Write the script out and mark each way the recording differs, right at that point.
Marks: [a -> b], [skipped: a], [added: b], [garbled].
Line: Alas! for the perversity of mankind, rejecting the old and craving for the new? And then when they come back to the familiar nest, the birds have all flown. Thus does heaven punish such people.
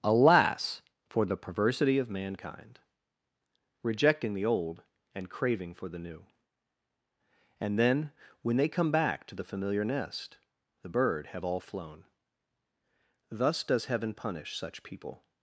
Alas! for the perversity of mankind, rejecting the old and craving for the new? And then when they come back to the familiar nest, the [birds -> bird] have all flown. Thus does heaven punish such people.